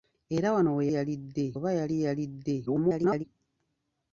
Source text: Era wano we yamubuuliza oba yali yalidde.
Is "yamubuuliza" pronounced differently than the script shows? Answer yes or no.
yes